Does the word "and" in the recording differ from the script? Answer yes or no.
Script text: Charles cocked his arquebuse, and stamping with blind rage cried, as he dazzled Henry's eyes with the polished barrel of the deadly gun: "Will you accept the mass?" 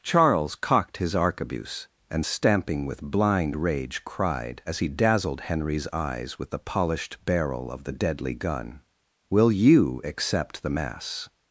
no